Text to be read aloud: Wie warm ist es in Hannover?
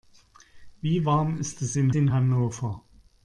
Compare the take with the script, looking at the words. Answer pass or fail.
fail